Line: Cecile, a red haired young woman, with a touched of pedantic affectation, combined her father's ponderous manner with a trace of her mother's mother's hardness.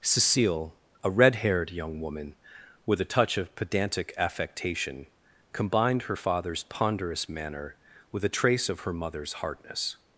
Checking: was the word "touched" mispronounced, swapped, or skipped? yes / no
yes